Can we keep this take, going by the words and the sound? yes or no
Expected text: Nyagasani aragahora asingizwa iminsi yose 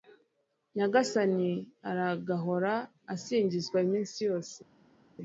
yes